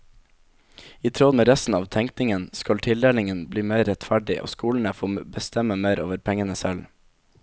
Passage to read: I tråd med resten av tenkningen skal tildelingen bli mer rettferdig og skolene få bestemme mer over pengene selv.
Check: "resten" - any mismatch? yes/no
no